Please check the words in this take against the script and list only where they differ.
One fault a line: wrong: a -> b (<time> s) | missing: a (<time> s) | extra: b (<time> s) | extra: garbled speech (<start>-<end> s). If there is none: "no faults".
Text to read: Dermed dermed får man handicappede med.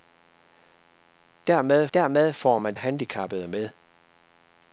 no faults